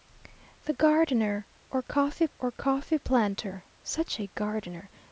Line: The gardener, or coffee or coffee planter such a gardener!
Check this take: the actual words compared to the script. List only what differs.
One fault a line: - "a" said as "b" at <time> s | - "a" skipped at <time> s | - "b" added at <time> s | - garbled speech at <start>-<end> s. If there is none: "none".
none